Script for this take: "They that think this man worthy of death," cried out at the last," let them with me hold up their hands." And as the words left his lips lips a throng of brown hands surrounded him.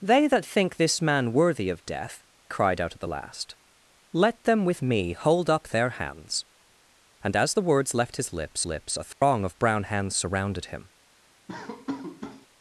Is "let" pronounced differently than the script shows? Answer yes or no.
no